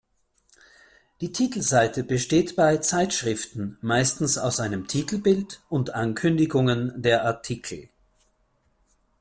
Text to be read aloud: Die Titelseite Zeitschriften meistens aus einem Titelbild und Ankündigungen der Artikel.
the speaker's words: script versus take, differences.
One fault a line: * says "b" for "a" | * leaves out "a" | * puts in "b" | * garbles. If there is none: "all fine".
* puts in "besteht bei"